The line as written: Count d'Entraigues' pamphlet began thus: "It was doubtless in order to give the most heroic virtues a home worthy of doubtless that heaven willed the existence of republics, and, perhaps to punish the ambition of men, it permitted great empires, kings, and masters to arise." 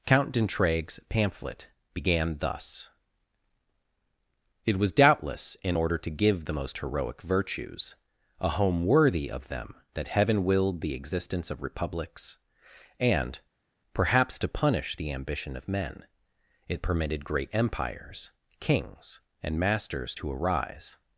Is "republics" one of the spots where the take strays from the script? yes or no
no